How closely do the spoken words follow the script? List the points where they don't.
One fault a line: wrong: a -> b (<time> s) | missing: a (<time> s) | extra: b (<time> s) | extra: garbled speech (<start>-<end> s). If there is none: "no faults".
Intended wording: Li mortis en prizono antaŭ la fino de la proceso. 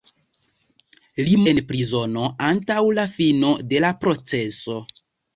missing: mortis (1.4 s)